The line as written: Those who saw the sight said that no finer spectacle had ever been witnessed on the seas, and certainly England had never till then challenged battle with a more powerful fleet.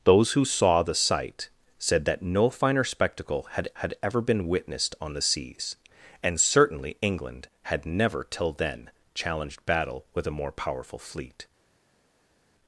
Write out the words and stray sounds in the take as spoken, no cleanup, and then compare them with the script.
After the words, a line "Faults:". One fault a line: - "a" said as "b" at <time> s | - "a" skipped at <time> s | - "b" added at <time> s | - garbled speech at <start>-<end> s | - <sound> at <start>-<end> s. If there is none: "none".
Those who saw the sight said that no finer spectacle had had ever been witnessed on the seas, and certainly England had never till then challenged battle with a more powerful fleet.
Faults:
- "had" added at 3.8 s